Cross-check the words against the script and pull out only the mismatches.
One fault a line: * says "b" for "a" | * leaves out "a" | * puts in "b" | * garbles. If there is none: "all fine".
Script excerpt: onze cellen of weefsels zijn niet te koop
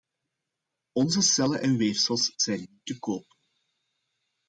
* says "en" for "of"